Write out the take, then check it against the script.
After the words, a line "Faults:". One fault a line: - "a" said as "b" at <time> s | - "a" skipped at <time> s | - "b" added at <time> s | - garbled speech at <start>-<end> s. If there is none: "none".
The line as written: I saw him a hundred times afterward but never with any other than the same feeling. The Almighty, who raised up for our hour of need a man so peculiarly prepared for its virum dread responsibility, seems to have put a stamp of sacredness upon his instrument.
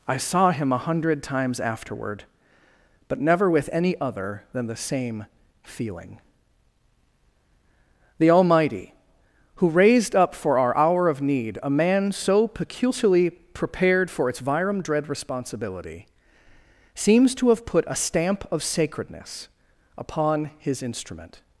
I saw him a hundred times afterward but never with any other than the same feeling. The Almighty, who raised up for our hour of need a man so peculiarly prepared for its virum dread responsibility, seems to have put a stamp of sacredness upon his instrument.
Faults:
none